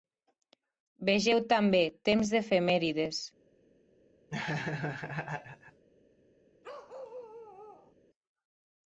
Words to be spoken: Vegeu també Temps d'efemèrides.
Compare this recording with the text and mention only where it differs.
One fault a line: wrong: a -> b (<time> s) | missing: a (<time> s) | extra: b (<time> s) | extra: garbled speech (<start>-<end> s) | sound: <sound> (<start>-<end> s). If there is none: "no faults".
sound: laugh (4.3-5.8 s)
sound: bark (6.6-7.9 s)